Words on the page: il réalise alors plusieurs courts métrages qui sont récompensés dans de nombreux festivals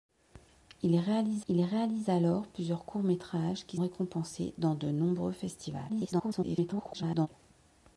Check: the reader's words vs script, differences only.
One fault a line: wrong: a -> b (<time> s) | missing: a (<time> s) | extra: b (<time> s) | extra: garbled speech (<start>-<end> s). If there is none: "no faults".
extra: il réalise (1.5 s)
missing: sont (3.8 s)
extra: garbled speech (5.9-7.3 s)